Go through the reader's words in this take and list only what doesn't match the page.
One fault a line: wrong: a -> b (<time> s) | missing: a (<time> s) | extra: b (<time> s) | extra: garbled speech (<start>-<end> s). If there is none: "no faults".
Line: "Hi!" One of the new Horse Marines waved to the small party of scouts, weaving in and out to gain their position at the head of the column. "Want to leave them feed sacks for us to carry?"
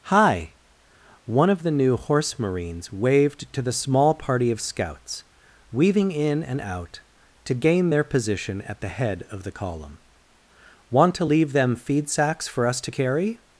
no faults